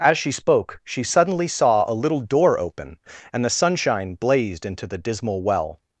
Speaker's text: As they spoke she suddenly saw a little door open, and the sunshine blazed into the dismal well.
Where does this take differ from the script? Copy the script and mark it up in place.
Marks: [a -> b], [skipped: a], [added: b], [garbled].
As [they -> she] spoke she suddenly saw a little door open, and the sunshine blazed into the dismal well.